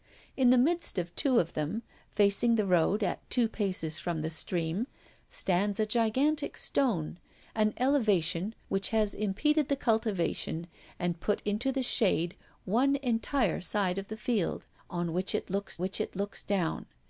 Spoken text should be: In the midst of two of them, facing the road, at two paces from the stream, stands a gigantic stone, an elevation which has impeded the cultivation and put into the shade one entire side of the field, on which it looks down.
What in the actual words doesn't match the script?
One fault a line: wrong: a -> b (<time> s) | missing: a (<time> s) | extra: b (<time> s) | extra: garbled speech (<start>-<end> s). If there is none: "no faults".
extra: which it looks (15.8 s)